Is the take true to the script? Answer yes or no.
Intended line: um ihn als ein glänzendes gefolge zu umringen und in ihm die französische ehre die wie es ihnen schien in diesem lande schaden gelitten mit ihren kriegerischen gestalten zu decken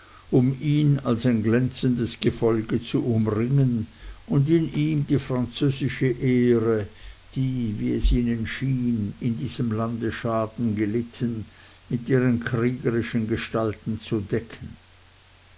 yes